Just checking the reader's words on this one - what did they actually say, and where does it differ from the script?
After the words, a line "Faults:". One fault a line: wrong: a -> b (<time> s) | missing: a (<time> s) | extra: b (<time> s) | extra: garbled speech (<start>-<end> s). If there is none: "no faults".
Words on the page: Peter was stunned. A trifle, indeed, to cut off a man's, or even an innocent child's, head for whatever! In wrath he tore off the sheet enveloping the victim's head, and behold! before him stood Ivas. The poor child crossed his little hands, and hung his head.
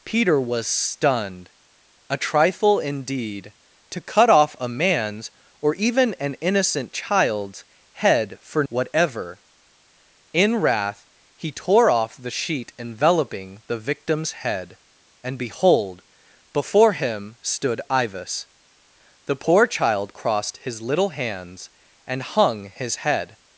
Peter was stunned. A trifle, indeed, to cut off a man's, or even an innocent child's, head for whatever! In wrath he tore off the sheet enveloping the victim's head, and behold! before him stood Ivas. The poor child crossed his little hands, and hung his head.
Faults:
no faults